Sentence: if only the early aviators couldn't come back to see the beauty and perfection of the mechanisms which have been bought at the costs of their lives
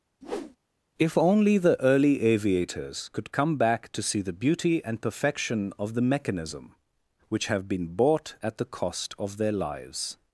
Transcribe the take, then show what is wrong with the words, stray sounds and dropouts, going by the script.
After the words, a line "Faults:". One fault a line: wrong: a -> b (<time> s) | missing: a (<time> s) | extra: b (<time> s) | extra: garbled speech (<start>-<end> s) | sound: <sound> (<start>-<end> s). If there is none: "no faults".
if only the early aviators could come back to see the beauty and perfection of the mechanism which have been bought at the cost of their lives
Faults:
sound: whoosh (0.2-0.6 s)
wrong: couldn't -> could (3.1 s)
wrong: mechanisms -> mechanism (6.0 s)
wrong: costs -> cost (8.6 s)